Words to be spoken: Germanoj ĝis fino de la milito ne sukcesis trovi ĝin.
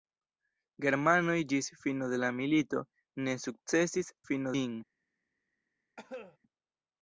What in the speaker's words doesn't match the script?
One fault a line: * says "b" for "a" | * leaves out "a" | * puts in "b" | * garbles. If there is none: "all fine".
* says "fino" for "trovi"